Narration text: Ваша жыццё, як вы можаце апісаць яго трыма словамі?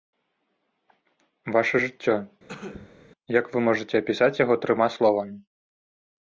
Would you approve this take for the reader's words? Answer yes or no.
yes